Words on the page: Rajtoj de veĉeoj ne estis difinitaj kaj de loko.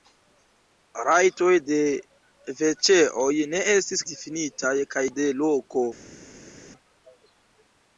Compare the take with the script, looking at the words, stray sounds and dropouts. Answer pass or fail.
pass